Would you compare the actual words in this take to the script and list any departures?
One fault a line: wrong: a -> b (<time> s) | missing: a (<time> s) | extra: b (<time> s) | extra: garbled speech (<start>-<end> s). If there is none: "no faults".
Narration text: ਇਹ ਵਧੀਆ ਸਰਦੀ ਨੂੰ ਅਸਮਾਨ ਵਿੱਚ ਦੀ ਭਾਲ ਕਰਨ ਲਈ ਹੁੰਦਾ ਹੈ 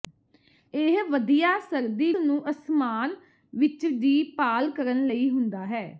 no faults